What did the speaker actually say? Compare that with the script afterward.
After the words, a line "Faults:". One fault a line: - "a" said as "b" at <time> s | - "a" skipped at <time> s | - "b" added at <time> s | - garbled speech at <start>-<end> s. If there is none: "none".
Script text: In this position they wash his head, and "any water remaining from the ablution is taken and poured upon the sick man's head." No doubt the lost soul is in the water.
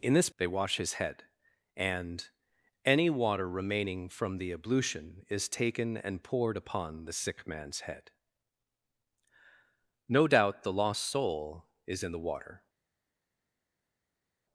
In this they wash his head, and "any water remaining from the ablution is taken and poured upon the sick man's head." No doubt the lost soul is in the water.
Faults:
- "position" skipped at 0.3 s